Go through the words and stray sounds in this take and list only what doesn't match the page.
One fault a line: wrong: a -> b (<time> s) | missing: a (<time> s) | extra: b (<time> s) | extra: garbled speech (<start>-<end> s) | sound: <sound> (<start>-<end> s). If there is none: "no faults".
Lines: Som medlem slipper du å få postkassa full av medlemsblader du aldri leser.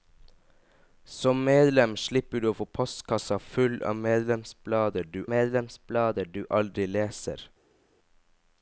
extra: medlemsblader du (5.3 s)